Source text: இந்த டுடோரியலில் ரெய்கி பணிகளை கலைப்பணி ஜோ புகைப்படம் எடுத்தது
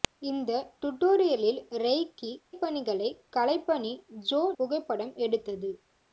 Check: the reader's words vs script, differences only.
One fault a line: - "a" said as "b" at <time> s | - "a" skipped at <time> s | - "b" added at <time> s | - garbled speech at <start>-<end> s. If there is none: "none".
none